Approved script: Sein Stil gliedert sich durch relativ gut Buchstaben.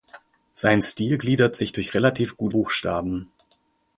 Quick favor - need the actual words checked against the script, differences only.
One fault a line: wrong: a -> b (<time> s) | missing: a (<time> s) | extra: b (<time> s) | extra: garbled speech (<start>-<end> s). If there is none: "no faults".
no faults